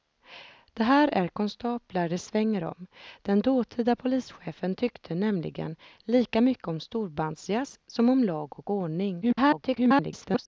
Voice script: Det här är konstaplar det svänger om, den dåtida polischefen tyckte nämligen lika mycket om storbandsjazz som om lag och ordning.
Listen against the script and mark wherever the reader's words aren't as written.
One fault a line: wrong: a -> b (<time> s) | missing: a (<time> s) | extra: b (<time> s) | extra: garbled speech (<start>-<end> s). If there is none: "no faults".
extra: garbled speech (9.2-10.5 s)